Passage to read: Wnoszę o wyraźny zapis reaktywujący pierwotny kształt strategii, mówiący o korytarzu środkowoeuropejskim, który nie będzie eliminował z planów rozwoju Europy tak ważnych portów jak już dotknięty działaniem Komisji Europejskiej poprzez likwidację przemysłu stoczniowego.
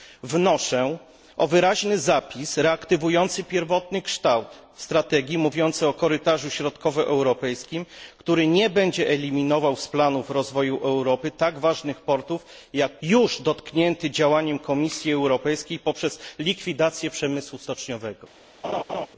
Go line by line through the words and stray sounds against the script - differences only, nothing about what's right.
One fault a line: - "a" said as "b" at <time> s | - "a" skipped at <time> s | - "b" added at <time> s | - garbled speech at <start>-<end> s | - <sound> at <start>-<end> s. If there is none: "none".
- laugh at 18.6-19.1 s